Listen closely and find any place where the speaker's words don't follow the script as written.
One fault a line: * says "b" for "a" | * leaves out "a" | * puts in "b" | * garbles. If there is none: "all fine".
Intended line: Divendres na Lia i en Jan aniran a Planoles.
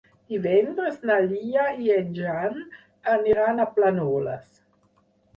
all fine